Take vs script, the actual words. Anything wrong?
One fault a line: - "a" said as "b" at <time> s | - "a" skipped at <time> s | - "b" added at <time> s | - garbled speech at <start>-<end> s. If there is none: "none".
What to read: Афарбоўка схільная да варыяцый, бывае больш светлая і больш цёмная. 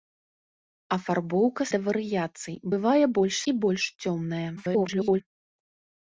- "схільная" skipped at 1.6 s
- "светлая" skipped at 3.3 s
- garbled speech at 4.6-5.2 s